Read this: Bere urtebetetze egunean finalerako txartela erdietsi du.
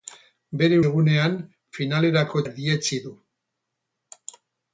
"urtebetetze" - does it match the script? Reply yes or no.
no